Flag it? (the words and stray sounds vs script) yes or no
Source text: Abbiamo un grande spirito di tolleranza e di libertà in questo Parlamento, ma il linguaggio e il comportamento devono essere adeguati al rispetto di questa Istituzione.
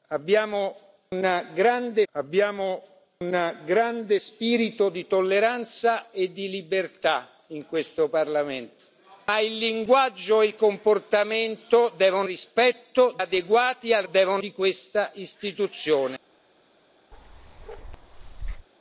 yes